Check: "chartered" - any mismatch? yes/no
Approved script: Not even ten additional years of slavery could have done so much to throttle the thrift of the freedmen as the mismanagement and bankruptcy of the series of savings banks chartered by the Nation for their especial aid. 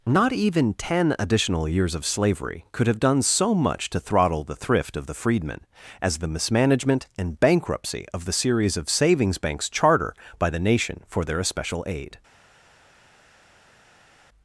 yes